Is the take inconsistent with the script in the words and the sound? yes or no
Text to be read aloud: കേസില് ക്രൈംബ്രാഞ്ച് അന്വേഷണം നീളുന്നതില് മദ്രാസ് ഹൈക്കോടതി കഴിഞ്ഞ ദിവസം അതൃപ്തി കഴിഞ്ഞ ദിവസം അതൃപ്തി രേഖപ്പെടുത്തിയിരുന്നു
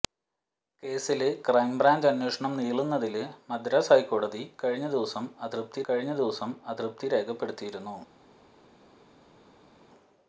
no